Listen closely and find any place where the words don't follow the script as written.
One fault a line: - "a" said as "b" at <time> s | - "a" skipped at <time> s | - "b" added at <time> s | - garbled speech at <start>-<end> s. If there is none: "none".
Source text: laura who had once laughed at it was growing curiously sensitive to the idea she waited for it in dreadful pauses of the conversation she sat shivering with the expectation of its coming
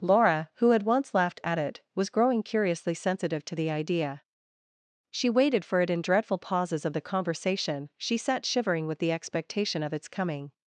none